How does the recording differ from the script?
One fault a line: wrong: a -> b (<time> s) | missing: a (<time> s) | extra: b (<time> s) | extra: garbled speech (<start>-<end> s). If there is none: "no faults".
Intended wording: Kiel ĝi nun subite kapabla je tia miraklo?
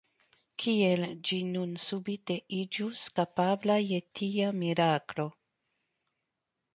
extra: iĝus (2.6 s)